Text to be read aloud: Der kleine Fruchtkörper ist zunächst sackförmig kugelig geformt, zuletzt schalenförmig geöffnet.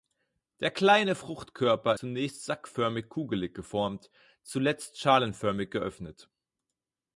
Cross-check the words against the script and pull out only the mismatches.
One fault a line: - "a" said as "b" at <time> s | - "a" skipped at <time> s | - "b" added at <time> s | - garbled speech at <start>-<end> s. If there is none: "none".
- "ist" skipped at 1.9 s